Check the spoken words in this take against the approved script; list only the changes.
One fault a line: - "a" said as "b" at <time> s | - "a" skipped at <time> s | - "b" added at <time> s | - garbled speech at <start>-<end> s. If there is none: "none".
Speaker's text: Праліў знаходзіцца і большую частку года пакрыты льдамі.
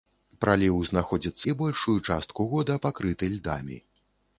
none